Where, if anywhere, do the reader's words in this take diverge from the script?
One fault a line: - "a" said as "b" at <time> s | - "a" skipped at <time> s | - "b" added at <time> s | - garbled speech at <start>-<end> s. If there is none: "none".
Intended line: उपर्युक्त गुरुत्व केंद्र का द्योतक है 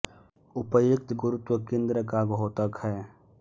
none